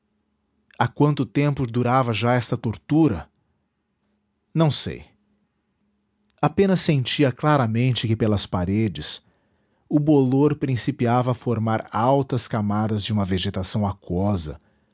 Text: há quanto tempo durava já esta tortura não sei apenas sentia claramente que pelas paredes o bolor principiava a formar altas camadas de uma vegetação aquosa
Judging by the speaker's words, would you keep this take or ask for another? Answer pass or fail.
pass